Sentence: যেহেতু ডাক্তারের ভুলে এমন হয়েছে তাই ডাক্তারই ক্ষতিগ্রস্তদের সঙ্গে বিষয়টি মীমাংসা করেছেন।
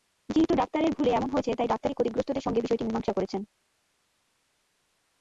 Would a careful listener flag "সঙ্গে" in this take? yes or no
no